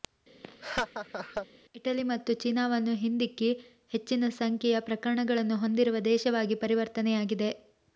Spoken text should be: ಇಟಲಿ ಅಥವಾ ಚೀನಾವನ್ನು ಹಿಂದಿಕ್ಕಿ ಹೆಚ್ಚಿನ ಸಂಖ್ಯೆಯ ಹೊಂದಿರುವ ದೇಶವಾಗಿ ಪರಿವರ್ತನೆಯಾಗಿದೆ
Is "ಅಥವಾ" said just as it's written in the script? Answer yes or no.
no